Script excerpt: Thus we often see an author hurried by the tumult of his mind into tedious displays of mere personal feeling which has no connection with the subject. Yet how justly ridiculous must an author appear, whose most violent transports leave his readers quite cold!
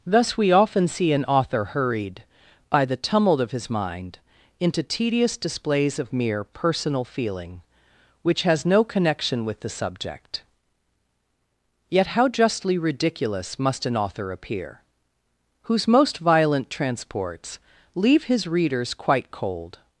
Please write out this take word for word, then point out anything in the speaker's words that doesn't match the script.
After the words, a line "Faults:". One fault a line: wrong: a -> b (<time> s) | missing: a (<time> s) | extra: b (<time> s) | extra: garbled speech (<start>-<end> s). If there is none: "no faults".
Thus we often see an author hurried by the tumult of his mind into tedious displays of mere personal feeling which has no connection with the subject. Yet how justly ridiculous must an author appear, whose most violent transports leave his readers quite cold!
Faults:
no faults